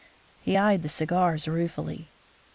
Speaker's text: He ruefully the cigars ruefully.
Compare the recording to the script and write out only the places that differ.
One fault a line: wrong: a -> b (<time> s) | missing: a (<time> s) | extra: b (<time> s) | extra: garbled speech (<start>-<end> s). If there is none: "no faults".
wrong: ruefully -> eyed (0.6 s)